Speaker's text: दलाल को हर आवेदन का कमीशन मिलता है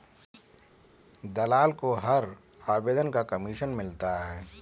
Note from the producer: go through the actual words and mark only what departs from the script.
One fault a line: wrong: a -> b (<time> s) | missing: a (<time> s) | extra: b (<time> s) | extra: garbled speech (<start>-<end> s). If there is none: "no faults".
no faults